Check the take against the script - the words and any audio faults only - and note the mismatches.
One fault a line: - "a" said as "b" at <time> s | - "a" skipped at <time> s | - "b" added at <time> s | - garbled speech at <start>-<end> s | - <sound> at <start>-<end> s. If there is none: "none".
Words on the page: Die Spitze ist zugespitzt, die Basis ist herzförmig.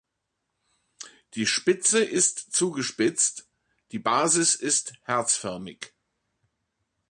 none